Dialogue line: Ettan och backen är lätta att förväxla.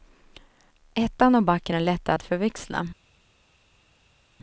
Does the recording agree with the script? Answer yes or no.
yes